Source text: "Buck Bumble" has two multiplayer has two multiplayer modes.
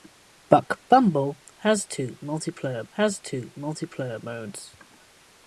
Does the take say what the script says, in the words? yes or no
yes